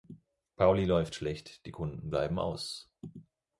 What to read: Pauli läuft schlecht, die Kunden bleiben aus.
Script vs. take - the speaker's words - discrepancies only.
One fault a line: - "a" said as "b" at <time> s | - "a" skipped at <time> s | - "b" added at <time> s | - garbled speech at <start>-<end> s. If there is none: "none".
none